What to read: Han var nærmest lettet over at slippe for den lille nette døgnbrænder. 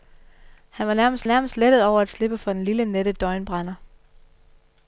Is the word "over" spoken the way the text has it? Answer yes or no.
yes